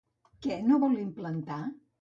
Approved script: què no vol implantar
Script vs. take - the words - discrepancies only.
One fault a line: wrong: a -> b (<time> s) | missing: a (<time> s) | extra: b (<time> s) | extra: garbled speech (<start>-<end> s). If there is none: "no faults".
no faults